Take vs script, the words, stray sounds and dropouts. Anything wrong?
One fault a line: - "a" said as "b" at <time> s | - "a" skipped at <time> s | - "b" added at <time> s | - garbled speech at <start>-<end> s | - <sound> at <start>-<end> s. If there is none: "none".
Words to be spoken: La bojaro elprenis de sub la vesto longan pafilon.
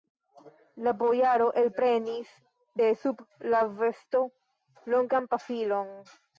none